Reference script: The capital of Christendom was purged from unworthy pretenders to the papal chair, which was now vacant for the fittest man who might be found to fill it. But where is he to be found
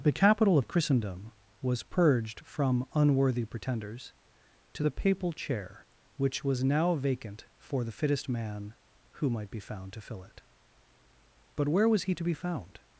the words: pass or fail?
fail